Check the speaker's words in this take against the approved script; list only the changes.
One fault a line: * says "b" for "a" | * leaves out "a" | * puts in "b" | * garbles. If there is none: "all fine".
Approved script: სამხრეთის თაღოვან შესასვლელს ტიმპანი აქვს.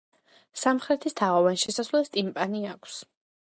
all fine